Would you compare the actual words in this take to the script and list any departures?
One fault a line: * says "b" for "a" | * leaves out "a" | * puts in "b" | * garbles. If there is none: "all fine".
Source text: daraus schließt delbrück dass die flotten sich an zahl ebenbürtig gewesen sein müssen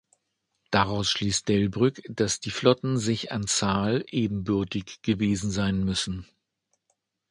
all fine